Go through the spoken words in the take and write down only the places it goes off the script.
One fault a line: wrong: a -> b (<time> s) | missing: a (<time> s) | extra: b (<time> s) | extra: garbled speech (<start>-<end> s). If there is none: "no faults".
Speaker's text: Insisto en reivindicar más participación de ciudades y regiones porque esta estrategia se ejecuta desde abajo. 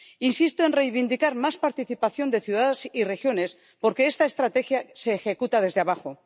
no faults